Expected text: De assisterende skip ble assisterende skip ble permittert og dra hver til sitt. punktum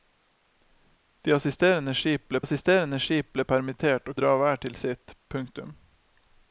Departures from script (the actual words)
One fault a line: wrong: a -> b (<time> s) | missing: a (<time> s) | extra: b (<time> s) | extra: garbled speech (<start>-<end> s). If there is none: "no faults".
no faults